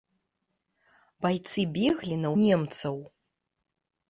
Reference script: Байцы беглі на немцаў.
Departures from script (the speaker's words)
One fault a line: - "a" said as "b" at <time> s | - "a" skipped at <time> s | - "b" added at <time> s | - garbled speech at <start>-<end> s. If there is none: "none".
none